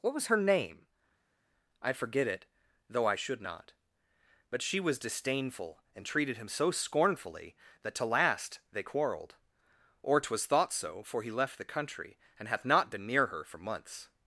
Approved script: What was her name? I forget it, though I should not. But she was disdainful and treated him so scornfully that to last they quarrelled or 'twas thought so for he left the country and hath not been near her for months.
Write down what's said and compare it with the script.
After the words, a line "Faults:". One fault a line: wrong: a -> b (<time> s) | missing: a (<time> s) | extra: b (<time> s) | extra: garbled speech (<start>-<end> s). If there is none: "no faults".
What was her name? I forget it, though I should not. But she was disdainful and treated him so scornfully that to last they quarrelled or 'twas thought so for he left the country and hath not been near her for months.
Faults:
no faults